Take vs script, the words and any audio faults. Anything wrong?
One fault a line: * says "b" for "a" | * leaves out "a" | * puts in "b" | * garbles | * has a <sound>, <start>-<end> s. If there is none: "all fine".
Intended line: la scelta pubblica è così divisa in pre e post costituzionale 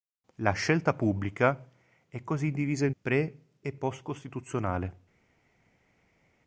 all fine